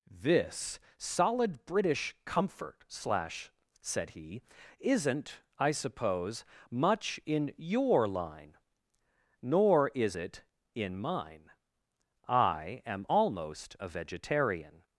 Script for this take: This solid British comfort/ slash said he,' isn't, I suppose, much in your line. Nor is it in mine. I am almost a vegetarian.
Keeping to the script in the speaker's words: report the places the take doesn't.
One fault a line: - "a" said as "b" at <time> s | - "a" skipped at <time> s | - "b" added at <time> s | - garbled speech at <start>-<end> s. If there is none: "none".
none